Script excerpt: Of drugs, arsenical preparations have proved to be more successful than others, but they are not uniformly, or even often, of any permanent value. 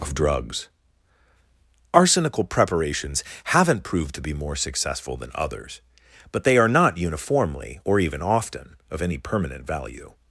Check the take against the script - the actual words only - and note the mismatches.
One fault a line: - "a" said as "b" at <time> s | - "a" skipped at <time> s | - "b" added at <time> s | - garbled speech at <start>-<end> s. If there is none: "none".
- "have" said as "haven't" at 3.5 s